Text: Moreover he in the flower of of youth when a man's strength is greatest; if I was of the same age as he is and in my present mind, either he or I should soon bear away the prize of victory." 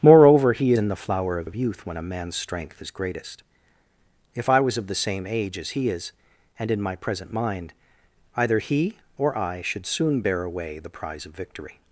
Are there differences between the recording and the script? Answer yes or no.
no